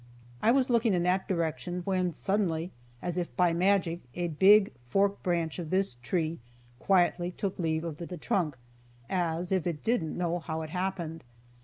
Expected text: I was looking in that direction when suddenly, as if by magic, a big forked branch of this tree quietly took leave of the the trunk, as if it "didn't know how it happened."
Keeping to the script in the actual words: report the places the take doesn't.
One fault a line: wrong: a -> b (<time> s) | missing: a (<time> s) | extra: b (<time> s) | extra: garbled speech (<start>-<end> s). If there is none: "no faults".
no faults